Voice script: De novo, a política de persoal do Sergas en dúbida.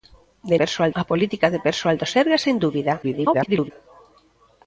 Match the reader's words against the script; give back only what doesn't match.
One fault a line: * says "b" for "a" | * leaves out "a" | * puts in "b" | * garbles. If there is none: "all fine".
* says "persoal" for "novo"
* garbles